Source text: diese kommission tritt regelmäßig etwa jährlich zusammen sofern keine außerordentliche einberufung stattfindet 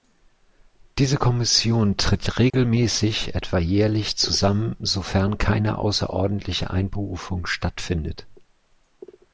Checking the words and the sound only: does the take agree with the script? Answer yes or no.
no